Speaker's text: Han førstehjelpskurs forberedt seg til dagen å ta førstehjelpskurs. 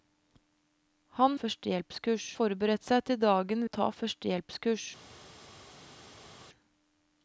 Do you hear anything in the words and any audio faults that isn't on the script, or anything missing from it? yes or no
no